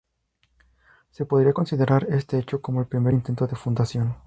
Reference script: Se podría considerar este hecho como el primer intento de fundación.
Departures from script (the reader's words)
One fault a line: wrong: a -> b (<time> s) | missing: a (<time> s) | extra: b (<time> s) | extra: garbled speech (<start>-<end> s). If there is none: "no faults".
no faults